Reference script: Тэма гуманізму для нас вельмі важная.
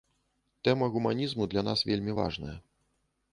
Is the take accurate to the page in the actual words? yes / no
yes